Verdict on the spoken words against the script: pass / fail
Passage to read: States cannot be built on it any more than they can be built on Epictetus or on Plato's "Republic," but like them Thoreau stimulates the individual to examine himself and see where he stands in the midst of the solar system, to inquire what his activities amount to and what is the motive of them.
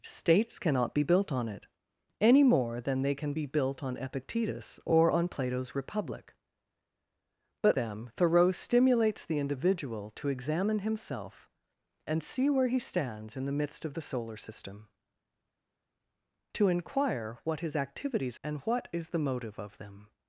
fail